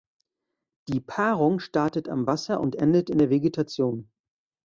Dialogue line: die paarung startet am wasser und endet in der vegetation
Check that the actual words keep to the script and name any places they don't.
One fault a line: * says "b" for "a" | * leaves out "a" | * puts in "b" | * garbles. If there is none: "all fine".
all fine